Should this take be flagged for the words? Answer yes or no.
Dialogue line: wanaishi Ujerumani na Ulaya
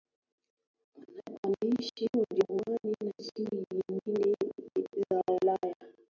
yes